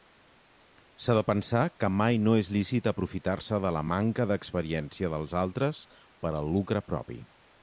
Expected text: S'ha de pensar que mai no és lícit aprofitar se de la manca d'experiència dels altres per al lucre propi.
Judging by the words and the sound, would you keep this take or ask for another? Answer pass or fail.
pass